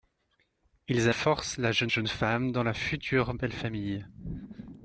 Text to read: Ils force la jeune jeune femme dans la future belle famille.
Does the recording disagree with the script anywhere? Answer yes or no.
no